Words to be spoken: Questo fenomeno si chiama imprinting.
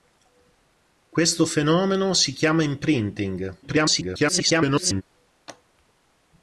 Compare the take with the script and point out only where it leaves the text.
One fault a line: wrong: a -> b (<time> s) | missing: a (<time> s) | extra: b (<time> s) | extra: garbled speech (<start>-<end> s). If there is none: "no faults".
extra: garbled speech (3.6-5.0 s)